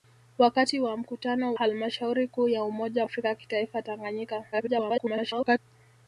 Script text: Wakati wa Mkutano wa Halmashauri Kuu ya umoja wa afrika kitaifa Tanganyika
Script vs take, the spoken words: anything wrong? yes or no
yes